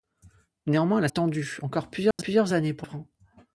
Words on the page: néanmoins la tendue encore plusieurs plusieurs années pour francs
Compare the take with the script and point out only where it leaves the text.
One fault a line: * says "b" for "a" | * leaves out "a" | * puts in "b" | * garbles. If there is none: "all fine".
all fine